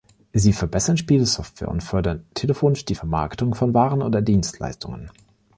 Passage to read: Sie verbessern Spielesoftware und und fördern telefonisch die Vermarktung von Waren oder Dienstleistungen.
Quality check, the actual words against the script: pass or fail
fail